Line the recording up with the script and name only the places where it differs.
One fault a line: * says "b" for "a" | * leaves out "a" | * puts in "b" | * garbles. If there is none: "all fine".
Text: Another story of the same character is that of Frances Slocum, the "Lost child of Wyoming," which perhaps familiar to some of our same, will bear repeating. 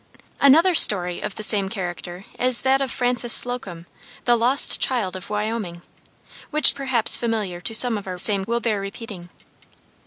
all fine